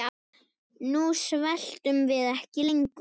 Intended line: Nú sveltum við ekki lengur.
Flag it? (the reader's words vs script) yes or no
no